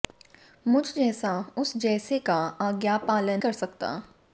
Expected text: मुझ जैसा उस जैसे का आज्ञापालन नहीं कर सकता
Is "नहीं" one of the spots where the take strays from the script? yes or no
yes